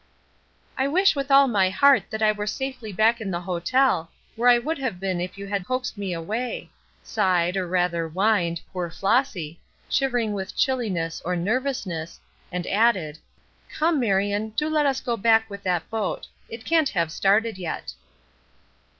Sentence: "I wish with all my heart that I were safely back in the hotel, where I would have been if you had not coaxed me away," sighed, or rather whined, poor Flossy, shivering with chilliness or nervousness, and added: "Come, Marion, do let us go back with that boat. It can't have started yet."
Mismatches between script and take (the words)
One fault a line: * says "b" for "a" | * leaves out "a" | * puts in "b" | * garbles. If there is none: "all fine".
* leaves out "not"